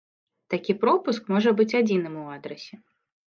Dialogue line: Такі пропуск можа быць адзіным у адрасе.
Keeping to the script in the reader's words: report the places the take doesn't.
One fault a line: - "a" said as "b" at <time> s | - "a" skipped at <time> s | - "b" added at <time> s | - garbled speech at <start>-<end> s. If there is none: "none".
none